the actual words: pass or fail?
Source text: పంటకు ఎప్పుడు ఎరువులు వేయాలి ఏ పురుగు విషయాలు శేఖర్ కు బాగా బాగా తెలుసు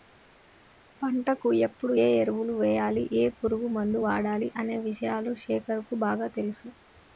fail